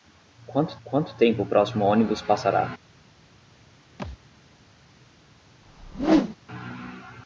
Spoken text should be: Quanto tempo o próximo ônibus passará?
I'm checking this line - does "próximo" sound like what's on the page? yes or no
yes